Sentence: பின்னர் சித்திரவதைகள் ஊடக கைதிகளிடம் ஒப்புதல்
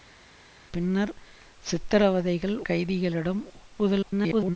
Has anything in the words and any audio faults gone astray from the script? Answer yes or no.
yes